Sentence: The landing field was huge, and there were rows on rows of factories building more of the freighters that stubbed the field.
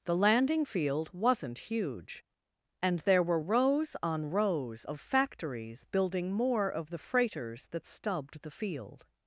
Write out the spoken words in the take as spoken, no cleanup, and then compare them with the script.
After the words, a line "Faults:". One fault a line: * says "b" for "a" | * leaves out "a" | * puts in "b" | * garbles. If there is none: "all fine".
The landing field wasn't huge, and there were rows on rows of factories building more of the freighters that stubbed the field.
Faults:
* says "wasn't" for "was"